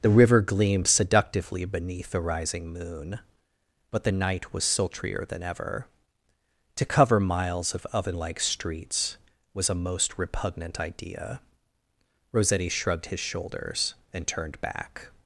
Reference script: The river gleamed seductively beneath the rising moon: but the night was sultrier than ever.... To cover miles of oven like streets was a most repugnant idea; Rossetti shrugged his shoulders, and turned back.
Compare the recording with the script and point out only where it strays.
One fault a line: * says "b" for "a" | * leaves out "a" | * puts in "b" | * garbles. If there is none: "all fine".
all fine